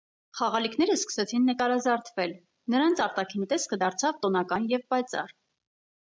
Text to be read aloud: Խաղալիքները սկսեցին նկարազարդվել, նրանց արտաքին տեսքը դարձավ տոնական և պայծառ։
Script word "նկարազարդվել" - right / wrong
right